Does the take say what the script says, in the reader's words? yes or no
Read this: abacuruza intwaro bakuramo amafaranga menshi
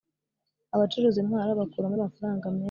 yes